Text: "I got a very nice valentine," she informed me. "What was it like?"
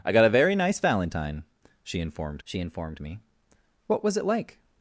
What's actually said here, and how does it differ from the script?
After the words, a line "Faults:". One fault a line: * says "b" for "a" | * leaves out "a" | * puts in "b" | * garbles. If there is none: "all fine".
"I got a very nice valentine," she informed she informed me. "What was it like?"
Faults:
* puts in "she informed"